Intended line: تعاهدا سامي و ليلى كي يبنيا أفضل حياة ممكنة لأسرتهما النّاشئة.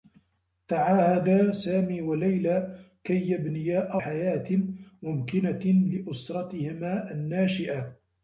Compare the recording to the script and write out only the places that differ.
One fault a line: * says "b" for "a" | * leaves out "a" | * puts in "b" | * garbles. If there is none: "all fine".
* leaves out "أفضل"